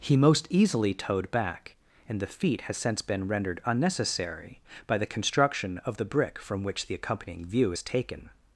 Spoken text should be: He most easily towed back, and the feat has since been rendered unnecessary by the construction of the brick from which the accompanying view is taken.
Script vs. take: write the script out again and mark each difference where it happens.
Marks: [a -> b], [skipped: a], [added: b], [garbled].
He most easily towed back, and the feat has since been rendered unnecessary by the construction of the brick from which the accompanying view is taken.